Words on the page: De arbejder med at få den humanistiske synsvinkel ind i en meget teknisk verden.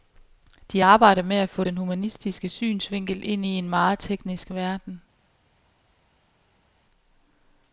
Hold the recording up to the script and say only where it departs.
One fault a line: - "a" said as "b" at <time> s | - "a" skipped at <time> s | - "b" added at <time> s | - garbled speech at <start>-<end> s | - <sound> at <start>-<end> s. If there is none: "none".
none